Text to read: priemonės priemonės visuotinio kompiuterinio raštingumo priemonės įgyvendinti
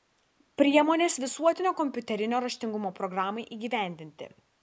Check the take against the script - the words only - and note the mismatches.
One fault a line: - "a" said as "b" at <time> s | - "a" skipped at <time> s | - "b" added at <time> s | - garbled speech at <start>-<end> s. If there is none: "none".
- "priemonės" skipped at 1.2 s
- "priemonės" said as "programai" at 3.0 s